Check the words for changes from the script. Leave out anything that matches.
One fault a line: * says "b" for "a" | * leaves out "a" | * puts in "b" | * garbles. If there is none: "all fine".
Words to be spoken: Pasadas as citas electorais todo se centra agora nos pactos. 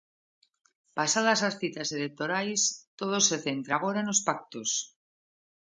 all fine